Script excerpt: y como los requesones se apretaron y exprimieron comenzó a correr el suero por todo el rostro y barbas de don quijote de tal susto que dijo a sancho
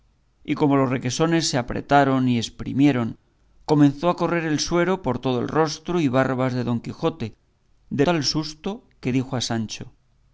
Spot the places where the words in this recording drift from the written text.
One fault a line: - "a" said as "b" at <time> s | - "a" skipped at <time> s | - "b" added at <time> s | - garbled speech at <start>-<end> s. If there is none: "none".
none